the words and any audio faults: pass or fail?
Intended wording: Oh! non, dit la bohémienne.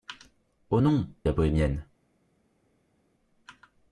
fail